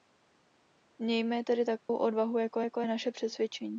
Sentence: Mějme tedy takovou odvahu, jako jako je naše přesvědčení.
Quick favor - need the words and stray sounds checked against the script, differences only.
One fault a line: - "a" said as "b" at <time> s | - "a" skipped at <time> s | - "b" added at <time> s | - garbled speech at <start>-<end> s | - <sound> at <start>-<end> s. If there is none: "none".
- dropout at 1.8-1.9 s